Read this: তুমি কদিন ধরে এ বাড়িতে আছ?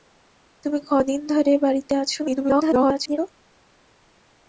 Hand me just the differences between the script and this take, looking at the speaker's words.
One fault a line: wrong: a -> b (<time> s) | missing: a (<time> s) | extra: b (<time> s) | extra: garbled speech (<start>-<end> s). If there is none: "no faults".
extra: garbled speech (2.2-3.2 s)